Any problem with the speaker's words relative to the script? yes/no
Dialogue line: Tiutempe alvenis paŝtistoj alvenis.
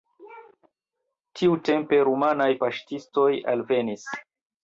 yes